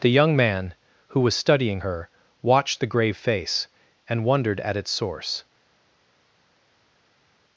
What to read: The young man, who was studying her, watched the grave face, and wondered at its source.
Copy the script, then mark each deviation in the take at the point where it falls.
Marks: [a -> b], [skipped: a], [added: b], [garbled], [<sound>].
The young man, who was studying her, watched the grave face, and wondered at its source.